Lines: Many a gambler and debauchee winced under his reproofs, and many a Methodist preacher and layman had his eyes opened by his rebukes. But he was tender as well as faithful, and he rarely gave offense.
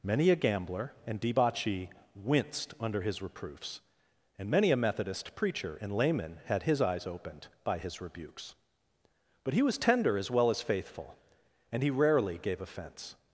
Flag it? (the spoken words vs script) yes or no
no